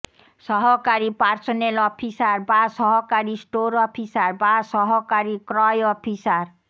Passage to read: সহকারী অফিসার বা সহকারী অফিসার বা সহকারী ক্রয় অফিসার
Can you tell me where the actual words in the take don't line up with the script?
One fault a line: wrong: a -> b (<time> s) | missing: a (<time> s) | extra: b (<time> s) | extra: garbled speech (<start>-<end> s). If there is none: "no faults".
extra: পার্সোনেল (1.2 s)
extra: স্টোর (3.4 s)